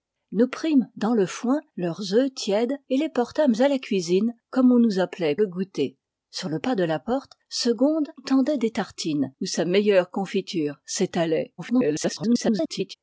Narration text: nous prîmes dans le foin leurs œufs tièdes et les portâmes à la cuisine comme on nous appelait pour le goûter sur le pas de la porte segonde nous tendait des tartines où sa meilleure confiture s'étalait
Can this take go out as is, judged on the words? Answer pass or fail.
fail